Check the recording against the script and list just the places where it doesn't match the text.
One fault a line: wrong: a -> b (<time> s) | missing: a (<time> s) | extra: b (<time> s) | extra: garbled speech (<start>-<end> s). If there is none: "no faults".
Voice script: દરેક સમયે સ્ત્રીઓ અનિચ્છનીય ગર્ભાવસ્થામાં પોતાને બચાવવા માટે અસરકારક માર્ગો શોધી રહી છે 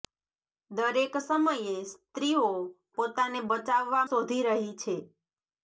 missing: અનિચ્છનીય ગર્ભાવસ્થામાં (2.5 s)
missing: માટે અસરકારક માર્ગો (4.1 s)